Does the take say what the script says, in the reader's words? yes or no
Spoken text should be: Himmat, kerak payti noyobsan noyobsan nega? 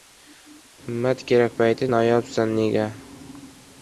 no